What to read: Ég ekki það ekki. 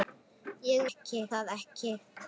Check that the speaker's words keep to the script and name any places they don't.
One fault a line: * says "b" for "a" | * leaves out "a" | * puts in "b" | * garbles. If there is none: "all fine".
all fine